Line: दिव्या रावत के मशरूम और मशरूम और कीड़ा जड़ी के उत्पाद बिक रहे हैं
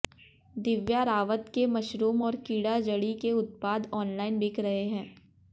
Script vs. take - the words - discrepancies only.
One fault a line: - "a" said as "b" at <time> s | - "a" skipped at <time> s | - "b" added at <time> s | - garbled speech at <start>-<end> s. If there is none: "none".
- "मशरूम और" skipped at 2.4 s
- "ऑनलाइन" added at 3.9 s